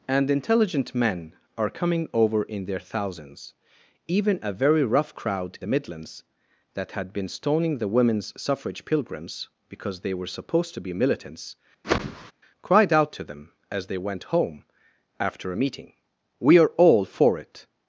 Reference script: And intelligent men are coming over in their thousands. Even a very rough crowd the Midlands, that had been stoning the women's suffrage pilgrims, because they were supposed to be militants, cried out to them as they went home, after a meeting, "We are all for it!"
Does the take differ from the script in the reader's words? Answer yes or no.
no